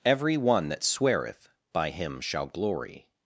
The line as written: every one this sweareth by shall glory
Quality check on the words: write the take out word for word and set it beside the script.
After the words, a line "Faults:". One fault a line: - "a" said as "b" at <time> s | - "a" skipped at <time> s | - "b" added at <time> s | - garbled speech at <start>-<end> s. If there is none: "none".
every one that sweareth by him shall glory
Faults:
- "this" said as "that" at 0.7 s
- "him" added at 1.9 s